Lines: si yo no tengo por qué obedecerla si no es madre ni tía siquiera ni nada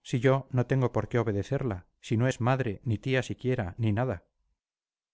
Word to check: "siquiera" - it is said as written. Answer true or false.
true